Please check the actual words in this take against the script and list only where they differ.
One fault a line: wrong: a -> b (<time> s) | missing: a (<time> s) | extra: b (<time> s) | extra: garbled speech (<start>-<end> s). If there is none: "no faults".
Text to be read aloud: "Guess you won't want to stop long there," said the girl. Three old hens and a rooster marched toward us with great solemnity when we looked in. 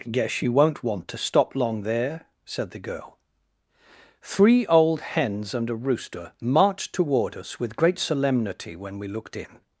no faults